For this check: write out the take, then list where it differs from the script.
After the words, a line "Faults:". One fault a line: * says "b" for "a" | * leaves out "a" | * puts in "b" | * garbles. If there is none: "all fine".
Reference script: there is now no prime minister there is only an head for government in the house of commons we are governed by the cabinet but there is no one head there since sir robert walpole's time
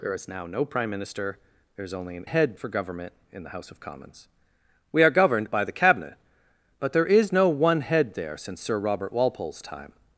there is now no prime minister there is only an head for government in the house of commons we are governed by the cabinet but there is no one head there since sir robert walpole's time
Faults:
all fine